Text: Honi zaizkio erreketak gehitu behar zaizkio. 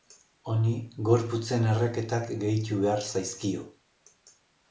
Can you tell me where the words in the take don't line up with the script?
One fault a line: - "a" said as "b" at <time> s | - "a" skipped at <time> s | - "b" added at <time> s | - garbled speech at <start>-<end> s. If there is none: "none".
- "zaizkio" said as "gorputzen" at 1.1 s